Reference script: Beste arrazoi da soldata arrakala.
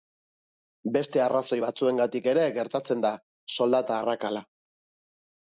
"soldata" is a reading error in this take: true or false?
false